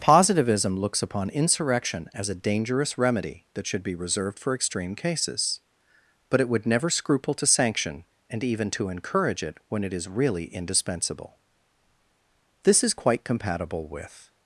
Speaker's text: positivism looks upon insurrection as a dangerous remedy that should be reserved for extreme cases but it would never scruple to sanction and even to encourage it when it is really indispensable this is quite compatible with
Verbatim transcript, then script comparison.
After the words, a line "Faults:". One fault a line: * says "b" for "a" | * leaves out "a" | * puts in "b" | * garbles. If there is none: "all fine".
positivism looks upon insurrection as a dangerous remedy that should be reserved for extreme cases but it would never scruple to sanction and even to encourage it when it is really indispensable this is quite compatible with
Faults:
all fine